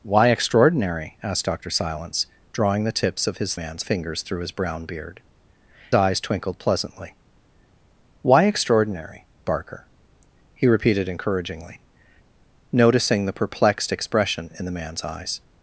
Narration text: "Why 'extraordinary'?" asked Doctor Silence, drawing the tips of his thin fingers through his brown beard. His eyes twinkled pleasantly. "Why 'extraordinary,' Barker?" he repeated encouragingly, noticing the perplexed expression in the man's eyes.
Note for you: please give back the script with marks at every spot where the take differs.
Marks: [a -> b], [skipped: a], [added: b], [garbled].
"Why 'extraordinary'?" asked Doctor Silence, drawing the tips of his [thin -> man's] fingers through his brown beard. [skipped: His] eyes twinkled pleasantly. "Why 'extraordinary,' Barker?" he repeated encouragingly, noticing the perplexed expression in the man's eyes.